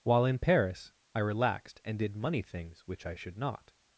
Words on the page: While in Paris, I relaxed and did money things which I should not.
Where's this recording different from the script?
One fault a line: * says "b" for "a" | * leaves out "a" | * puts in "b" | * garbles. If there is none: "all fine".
all fine